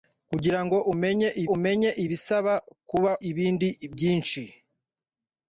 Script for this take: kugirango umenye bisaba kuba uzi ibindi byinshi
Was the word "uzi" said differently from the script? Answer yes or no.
yes